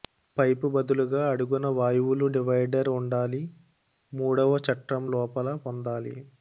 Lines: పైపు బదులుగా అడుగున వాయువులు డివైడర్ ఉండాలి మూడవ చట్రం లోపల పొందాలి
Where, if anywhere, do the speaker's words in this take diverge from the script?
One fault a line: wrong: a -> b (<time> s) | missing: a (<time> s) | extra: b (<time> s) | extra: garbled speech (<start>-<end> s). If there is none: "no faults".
no faults